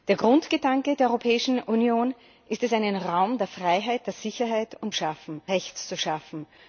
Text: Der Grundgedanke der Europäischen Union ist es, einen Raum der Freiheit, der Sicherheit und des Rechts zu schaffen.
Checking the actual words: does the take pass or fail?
fail